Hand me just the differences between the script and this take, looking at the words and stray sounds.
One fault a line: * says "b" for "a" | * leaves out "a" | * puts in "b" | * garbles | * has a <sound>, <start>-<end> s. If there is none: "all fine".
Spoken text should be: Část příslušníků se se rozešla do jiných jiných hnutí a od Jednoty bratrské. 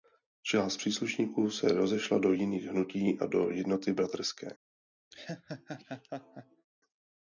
* leaves out "se"
* leaves out "jiných"
* says "do" for "od"
* has a laugh, 5.1-6.7 s